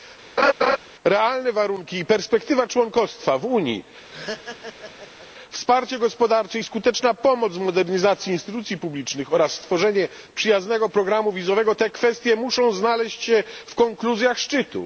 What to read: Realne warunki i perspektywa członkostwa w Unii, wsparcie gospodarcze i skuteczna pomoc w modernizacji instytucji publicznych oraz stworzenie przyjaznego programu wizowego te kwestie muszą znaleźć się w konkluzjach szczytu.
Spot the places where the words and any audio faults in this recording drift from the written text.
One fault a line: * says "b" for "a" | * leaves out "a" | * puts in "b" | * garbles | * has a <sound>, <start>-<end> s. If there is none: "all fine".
* has a laugh, 0.4-0.8 s
* has a laugh, 4.1-5.3 s